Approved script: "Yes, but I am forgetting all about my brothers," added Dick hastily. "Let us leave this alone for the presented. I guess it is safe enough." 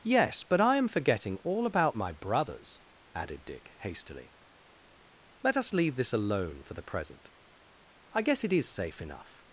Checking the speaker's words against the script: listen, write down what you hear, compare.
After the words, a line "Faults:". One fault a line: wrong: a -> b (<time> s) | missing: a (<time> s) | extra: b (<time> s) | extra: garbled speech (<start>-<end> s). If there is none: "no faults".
"Yes, but I am forgetting all about my brothers," added Dick hastily. "Let us leave this alone for the present. I guess it is safe enough."
Faults:
wrong: presented -> present (6.8 s)